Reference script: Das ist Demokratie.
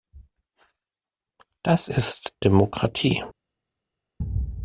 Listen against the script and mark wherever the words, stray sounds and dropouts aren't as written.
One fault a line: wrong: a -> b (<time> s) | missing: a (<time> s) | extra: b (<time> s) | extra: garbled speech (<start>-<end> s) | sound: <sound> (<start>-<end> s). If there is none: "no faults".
no faults